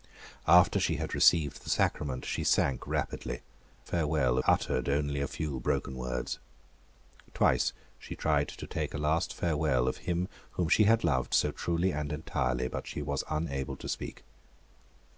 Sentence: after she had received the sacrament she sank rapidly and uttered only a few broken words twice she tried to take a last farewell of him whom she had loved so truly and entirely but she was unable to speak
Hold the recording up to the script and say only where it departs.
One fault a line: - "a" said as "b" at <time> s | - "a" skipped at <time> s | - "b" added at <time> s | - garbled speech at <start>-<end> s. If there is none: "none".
- "and" said as "farewell" at 3.8 s